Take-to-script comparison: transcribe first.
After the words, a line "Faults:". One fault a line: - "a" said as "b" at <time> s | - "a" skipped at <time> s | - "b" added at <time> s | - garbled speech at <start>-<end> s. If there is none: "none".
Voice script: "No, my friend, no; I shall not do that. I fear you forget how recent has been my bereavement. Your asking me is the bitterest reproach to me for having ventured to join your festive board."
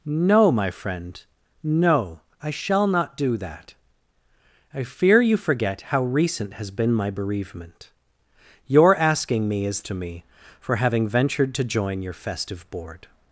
"No, my friend, no; I shall not do that. I fear you forget how recent has been my bereavement. Your asking me is to me for having ventured to join your festive board."
Faults:
- "the bitterest reproach" skipped at 9.8 s